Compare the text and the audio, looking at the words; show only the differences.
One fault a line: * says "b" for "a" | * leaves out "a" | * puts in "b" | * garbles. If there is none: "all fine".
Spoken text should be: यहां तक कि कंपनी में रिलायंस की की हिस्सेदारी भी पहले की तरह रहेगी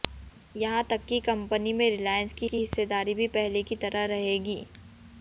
all fine